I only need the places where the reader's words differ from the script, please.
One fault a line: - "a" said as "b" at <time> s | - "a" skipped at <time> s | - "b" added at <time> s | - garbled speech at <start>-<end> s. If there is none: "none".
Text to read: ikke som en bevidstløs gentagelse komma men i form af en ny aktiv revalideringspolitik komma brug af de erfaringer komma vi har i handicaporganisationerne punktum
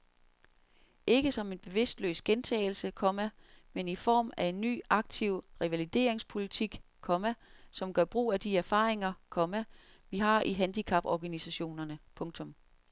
- "som gør" added at 7.7 s